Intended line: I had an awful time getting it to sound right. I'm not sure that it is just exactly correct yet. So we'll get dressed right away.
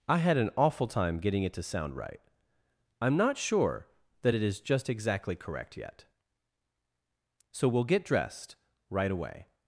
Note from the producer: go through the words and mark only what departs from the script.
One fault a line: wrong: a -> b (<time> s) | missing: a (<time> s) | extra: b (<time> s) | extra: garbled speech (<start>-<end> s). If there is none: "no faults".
no faults